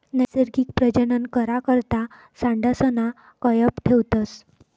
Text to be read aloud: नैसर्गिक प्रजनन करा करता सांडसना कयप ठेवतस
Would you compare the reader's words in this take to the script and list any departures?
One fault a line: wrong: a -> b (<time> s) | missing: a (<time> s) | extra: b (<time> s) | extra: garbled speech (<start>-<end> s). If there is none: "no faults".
no faults